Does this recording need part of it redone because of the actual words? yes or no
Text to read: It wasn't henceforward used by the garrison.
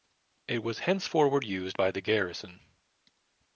yes